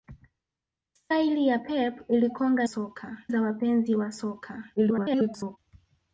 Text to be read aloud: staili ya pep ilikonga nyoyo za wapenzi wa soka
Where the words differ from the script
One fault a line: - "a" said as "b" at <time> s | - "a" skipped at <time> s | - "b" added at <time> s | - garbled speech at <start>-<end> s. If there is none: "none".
- "nyoyo" said as "soka" at 2.6 s
- garbled speech at 4.8-5.6 s